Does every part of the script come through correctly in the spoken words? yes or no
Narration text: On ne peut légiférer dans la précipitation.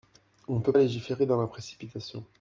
yes